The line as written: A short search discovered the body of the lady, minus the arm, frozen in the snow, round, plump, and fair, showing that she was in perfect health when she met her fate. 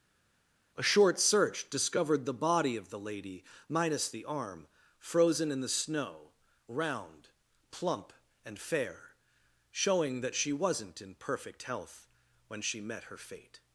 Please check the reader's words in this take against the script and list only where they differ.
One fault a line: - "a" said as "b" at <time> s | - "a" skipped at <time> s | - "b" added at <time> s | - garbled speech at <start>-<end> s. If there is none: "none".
- "was" said as "wasn't" at 10.5 s